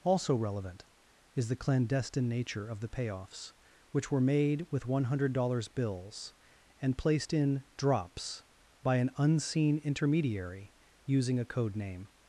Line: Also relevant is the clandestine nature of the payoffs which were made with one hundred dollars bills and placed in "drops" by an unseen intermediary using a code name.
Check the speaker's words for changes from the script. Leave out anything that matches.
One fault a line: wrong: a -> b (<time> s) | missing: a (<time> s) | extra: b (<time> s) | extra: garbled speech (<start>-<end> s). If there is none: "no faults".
no faults